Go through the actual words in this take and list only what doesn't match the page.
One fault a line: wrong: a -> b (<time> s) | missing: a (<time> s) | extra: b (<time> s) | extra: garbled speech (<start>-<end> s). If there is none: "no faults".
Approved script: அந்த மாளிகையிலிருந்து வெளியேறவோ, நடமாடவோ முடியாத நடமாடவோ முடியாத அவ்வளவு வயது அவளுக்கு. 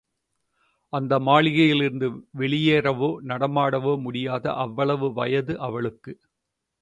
missing: நடமாடவோ முடியாத (4.5 s)